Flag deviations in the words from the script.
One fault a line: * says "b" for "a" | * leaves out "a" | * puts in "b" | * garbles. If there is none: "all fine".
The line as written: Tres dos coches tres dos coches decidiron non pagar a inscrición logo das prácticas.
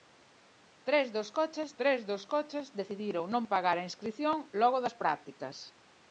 all fine